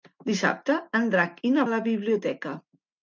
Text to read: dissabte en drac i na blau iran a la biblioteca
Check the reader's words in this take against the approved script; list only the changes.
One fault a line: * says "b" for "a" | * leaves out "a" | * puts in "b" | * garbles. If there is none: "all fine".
* leaves out "blau iran"